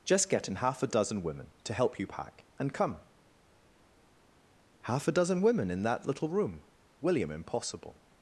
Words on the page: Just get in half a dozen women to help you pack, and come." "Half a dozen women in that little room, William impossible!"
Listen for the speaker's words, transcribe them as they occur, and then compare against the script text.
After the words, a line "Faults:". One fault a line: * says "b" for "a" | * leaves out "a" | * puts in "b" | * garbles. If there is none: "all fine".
Just get in half a dozen women to help you pack, and come." "Half a dozen women in that little room, William impossible!"
Faults:
all fine